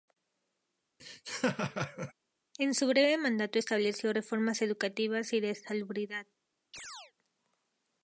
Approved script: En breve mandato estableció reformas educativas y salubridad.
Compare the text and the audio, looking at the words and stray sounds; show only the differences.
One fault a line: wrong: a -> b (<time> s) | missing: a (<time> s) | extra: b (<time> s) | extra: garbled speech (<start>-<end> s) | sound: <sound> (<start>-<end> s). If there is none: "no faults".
sound: laugh (1.0-2.1 s)
extra: su (2.7 s)
extra: de (5.4 s)
sound: chirp (6.7-7.1 s)